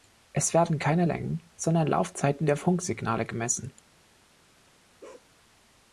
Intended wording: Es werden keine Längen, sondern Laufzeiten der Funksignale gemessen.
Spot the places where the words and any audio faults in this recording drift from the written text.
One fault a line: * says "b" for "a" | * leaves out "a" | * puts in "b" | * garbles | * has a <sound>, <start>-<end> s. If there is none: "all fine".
* has a bark, 5.0-5.3 s